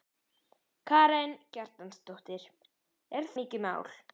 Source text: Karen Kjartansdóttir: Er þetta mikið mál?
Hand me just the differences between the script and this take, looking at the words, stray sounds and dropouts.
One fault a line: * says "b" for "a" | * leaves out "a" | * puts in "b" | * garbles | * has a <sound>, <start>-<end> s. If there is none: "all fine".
* leaves out "þetta"